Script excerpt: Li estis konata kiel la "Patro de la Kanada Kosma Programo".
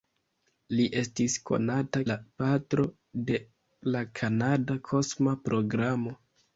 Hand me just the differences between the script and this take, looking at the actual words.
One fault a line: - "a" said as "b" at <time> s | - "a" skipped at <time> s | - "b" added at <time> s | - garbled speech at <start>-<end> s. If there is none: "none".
- "kiel" skipped at 2.0 s